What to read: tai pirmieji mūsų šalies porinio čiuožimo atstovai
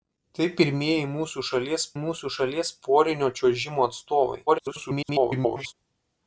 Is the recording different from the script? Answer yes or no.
yes